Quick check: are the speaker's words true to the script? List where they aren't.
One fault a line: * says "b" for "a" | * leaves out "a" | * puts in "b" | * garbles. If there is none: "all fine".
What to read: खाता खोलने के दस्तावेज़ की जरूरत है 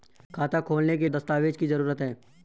all fine